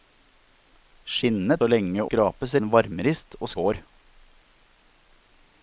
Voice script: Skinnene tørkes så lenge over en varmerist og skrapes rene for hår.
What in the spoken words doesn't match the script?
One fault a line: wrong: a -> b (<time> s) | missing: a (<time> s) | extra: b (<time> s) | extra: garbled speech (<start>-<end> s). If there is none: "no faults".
missing: tørkes (1.6 s)
wrong: over -> skrapes (2.1 s)
missing: skrapes rene for (3.5 s)